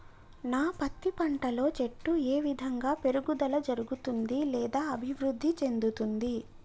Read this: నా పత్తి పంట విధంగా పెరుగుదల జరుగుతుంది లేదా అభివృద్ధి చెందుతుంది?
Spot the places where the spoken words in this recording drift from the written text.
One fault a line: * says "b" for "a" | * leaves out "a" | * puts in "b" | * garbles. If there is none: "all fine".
* puts in "లో చెట్టు ఏ"